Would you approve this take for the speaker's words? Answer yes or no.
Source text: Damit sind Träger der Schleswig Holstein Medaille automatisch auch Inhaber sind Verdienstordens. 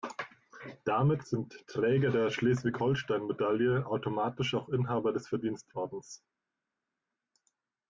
no